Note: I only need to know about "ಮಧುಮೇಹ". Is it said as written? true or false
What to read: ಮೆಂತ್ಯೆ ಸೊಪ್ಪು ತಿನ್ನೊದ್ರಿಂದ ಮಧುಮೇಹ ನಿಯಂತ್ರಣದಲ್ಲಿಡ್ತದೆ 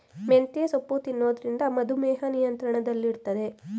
true